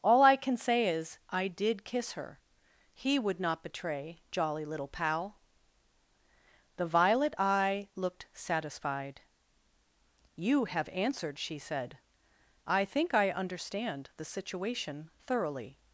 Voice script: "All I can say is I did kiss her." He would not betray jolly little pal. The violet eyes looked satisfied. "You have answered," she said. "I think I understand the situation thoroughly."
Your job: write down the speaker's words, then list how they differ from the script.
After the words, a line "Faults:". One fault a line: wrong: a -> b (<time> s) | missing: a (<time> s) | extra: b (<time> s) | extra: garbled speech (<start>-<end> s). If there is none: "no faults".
"All I can say is I did kiss her." He would not betray jolly little pal. The violet eye looked satisfied. "You have answered," she said. "I think I understand the situation thoroughly."
Faults:
wrong: eyes -> eye (7.4 s)